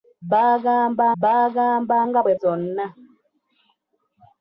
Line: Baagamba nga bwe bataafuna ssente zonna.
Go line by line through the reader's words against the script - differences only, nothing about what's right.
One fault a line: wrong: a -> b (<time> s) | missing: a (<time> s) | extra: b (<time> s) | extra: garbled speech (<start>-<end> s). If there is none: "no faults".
extra: baagamba (1.2 s)
missing: bataafuna ssente (2.3 s)